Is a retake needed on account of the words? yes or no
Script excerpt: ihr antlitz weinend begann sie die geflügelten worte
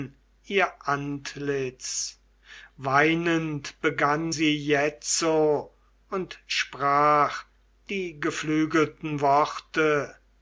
yes